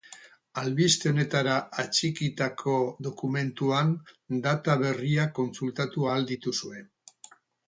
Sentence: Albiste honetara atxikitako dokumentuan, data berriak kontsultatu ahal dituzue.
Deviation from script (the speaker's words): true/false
false